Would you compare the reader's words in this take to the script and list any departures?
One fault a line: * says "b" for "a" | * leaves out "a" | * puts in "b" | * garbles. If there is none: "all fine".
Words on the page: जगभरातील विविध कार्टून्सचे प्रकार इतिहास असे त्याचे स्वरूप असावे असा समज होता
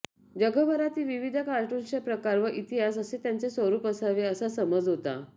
* puts in "व"